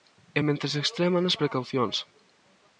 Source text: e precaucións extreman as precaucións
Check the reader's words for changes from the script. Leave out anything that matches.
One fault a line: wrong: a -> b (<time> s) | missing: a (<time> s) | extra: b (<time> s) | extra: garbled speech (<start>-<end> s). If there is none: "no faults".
wrong: precaucións -> mentres (0.5 s)